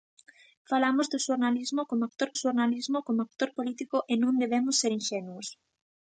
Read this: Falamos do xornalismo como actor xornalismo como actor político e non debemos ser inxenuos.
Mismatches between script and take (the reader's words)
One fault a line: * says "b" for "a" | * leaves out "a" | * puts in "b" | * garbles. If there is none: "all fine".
all fine